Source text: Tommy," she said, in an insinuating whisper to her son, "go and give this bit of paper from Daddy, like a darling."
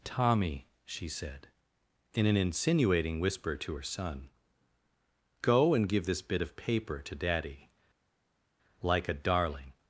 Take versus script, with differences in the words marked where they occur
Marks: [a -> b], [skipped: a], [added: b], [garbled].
Tommy," she said, in an insinuating whisper to her son, "go and give this bit of paper [from -> to] Daddy, like a darling."